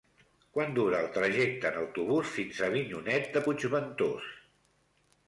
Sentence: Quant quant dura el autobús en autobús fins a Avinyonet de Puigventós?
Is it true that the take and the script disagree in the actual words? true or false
true